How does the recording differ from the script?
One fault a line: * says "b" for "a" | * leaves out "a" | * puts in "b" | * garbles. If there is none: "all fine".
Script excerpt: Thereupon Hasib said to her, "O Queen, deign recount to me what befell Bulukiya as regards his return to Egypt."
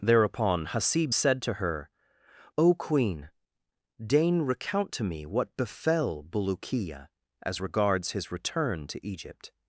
all fine